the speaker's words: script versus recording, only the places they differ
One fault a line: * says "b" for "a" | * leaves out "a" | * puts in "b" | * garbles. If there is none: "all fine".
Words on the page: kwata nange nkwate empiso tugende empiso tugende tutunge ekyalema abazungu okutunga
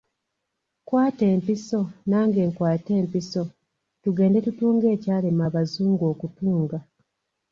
* puts in "empiso"
* leaves out "empiso tugende"